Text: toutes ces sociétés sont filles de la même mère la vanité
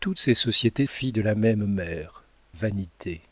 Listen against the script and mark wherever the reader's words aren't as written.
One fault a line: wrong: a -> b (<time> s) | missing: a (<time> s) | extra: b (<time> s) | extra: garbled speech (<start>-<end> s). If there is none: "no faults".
missing: sont (0.9 s)
missing: la (2.2 s)